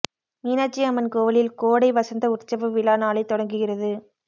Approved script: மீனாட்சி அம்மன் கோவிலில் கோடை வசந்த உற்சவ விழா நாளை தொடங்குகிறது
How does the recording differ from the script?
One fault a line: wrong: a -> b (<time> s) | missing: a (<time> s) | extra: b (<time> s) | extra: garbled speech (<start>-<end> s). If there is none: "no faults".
no faults